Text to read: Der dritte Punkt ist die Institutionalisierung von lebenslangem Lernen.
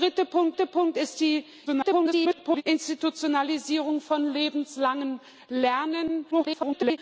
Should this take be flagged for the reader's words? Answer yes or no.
yes